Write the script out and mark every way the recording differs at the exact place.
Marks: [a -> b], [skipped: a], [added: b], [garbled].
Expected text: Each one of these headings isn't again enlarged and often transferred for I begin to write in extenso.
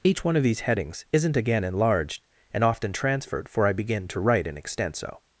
Each one of these headings isn't again enlarged and often transferred for I begin to write in extenso.